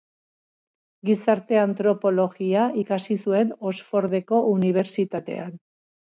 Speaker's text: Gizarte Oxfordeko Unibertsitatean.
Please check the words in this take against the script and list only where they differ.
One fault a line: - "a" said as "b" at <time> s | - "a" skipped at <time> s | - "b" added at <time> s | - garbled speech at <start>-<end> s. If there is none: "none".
- "antropologia ikasi zuen" added at 1.6 s